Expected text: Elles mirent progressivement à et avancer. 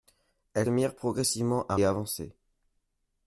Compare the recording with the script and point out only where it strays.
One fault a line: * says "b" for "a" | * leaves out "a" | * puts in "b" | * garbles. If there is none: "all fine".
all fine